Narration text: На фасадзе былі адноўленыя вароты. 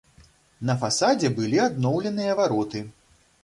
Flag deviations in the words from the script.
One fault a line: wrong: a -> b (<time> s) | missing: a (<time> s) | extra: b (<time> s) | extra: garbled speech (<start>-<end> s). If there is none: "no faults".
no faults